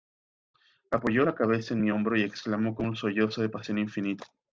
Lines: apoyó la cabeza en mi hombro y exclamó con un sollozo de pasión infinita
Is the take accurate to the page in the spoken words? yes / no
yes